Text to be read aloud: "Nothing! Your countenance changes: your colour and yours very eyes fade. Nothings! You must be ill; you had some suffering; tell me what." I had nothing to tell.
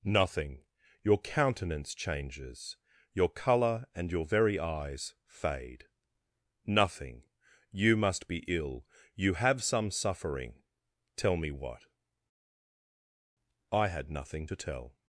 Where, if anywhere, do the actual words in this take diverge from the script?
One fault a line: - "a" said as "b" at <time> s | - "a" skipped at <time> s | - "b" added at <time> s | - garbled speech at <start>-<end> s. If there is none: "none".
- "yours" said as "your" at 4.1 s
- "Nothings" said as "Nothing" at 6.7 s
- "had" said as "have" at 9.3 s